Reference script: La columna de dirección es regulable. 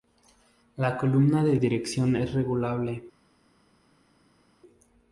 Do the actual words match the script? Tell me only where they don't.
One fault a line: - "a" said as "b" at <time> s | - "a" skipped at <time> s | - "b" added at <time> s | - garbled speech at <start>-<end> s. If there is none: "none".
none